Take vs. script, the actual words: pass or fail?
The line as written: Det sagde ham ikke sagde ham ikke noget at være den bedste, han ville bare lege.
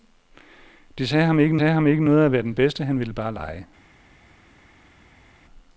pass